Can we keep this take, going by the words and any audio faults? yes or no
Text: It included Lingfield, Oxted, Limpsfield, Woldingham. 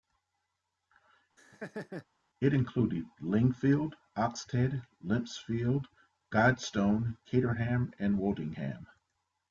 no